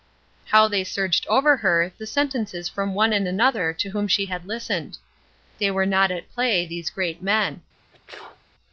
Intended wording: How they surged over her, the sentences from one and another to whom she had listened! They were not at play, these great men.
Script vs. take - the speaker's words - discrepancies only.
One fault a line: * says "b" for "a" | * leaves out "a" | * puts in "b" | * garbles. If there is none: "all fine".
all fine